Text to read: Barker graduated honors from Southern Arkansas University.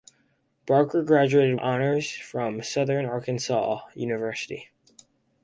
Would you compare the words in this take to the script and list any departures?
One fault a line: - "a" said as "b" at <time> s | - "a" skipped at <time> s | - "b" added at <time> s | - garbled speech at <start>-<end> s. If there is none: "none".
none